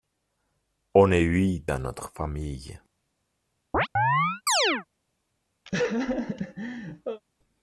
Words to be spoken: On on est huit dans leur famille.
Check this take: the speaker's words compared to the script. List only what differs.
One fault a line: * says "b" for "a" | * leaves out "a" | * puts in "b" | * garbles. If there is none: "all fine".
* leaves out "on"
* says "notre" for "leur"